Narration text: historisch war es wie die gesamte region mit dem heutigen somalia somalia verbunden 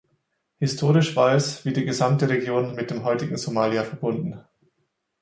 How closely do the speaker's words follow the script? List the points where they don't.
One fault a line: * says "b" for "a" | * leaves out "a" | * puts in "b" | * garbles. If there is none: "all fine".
* leaves out "somalia"